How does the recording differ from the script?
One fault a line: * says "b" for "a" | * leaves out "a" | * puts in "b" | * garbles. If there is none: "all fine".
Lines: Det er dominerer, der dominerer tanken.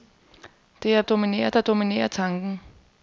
all fine